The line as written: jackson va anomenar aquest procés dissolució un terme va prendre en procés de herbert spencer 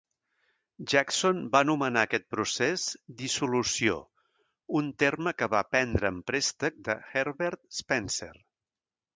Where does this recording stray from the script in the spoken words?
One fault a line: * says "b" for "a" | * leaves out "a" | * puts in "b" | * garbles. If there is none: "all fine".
* puts in "que"
* says "préstec" for "procés"